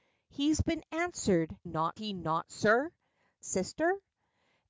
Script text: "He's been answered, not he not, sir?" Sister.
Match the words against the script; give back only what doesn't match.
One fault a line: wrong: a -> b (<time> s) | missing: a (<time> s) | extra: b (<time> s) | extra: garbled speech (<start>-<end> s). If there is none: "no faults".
no faults